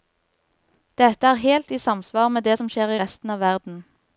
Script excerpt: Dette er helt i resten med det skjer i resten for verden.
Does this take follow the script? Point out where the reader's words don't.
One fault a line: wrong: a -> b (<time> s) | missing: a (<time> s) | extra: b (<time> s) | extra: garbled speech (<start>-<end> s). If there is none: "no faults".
wrong: resten -> samsvar (1.8 s)
extra: som (2.6 s)
wrong: for -> av (3.3 s)